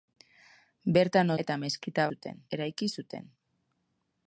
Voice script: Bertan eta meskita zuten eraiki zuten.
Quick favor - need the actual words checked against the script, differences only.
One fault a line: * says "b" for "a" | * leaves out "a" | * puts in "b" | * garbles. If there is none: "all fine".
all fine